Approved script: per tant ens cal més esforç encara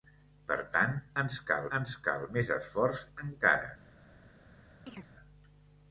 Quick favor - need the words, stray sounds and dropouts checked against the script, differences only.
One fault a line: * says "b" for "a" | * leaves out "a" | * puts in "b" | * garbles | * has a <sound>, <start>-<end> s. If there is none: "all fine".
* puts in "ens cal"
* has a chirp, 4.9-5.1 s